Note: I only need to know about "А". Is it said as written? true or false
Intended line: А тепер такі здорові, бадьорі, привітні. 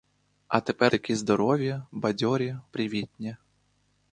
true